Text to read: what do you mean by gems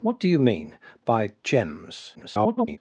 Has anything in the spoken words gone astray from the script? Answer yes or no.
yes